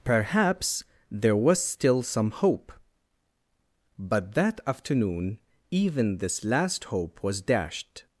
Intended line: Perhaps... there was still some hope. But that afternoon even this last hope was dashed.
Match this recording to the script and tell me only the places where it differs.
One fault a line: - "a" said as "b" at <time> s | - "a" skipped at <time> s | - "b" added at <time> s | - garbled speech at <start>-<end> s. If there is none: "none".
none